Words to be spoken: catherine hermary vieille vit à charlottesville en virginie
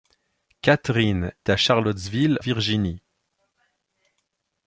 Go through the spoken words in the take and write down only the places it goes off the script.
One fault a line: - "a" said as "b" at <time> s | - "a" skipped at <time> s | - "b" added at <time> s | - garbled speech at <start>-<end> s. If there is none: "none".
- "hermary vieille vit" skipped at 1.3 s
- "en" skipped at 2.4 s